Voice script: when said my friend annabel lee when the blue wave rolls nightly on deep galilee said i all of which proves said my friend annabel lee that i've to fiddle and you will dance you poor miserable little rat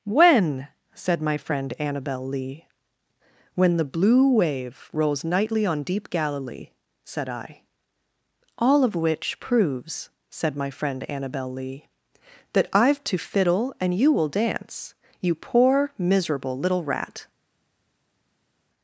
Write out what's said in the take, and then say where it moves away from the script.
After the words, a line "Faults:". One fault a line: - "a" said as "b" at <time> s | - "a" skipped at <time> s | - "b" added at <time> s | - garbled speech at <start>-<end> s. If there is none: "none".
when said my friend annabel lee when the blue wave rolls nightly on deep galilee said i all of which proves said my friend annabel lee that i've to fiddle and you will dance you poor miserable little rat
Faults:
none